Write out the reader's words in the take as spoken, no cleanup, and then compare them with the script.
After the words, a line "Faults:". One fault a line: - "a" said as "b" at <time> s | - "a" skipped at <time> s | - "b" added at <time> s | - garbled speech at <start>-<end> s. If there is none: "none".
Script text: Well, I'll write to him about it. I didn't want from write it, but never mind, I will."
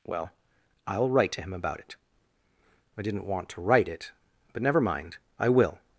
Well, I'll write to him about it. I didn't want to write it, but never mind, I will."
Faults:
- "from" said as "to" at 3.5 s